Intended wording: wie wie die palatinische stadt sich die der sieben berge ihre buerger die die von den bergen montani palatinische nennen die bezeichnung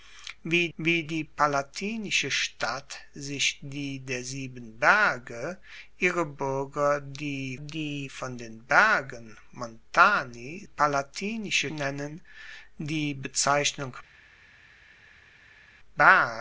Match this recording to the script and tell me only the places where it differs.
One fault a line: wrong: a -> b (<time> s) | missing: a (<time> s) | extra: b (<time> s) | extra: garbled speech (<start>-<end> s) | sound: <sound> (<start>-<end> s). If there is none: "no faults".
no faults